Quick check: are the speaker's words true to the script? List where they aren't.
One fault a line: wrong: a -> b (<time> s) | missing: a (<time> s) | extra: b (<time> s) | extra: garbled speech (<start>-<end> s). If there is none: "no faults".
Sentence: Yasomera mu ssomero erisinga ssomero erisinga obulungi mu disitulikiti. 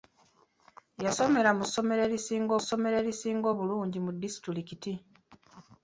no faults